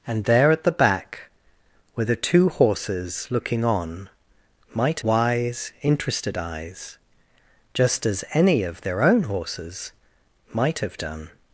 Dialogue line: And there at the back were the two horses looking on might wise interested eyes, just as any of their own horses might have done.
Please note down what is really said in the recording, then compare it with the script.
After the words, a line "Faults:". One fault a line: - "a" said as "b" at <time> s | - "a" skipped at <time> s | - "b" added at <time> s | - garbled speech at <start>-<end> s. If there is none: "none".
And there at the back were the two horses looking on might wise interested eyes, just as any of their own horses might have done.
Faults:
none